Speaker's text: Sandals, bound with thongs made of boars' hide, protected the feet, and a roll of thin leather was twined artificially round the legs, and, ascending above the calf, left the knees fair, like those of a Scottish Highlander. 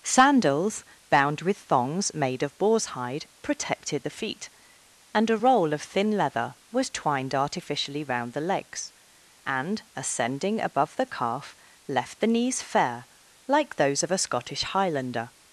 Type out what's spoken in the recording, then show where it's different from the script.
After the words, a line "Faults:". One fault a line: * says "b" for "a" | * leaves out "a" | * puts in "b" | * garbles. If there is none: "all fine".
Sandals, bound with thongs made of boars' hide, protected the feet, and a roll of thin leather was twined artificially round the legs, and, ascending above the calf, left the knees fair, like those of a Scottish Highlander.
Faults:
all fine